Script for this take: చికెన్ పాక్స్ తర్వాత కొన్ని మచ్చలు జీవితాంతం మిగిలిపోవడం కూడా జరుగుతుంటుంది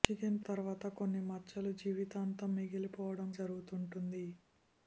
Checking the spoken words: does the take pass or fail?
fail